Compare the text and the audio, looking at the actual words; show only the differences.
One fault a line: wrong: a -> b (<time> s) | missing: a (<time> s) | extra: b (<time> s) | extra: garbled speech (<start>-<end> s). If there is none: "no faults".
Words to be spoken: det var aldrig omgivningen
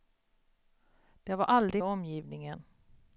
no faults